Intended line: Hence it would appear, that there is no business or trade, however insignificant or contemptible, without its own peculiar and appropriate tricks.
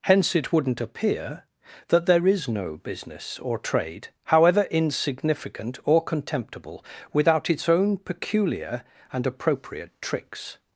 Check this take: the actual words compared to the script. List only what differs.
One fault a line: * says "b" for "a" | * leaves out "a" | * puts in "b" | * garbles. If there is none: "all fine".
* says "wouldn't" for "would"